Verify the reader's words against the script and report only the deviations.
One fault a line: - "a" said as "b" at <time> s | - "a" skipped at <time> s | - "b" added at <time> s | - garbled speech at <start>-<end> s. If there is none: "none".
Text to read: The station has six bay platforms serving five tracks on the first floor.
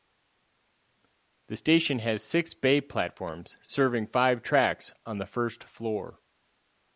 none